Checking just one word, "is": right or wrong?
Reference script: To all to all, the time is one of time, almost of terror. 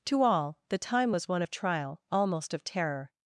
wrong